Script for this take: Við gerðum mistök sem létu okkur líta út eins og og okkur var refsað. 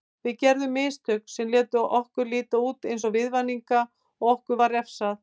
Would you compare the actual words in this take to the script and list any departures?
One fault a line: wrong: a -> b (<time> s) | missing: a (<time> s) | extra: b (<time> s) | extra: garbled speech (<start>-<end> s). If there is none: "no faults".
extra: viðvaninga (3.2 s)